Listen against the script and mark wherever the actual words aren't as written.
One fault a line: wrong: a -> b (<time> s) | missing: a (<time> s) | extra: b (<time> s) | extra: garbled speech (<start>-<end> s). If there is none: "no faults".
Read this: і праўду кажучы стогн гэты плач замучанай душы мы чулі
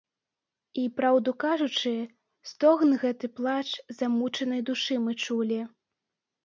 no faults